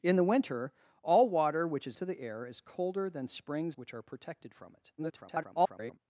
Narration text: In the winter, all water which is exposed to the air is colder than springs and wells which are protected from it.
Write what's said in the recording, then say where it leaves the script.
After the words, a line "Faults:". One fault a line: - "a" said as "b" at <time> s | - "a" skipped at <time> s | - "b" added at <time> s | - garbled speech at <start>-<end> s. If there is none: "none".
In the winter, all water which is to the air is colder than springs which are protected from it. [garbled]
Faults:
- "exposed" skipped at 2.0 s
- "and wells" skipped at 3.8 s
- garbled speech at 5.0-6.0 s